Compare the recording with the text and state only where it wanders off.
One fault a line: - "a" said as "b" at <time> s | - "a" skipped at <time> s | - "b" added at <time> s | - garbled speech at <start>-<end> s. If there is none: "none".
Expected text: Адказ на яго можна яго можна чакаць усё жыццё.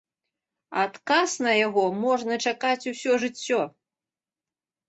- "яго можна" skipped at 2.4 s